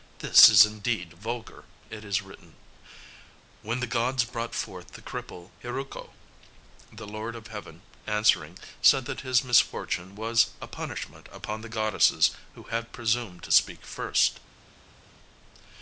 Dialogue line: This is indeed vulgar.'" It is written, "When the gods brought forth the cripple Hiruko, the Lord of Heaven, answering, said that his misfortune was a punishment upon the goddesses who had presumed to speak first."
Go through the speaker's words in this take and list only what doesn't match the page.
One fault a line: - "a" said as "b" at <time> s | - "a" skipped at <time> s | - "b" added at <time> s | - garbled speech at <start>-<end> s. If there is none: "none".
none